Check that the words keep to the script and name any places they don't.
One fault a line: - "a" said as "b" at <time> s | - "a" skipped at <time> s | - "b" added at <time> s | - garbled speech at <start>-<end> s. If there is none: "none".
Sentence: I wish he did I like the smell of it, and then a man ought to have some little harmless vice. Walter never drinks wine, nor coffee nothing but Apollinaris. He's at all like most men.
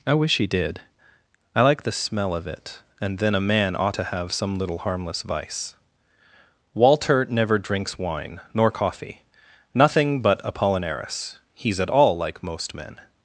none